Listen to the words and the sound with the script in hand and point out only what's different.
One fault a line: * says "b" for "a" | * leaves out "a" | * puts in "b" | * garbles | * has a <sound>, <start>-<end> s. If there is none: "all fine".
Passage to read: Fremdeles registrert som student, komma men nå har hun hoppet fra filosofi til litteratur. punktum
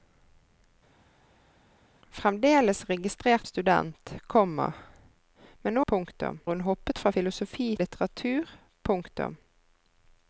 * leaves out "som"
* says "punktum" for "har"
* leaves out "til"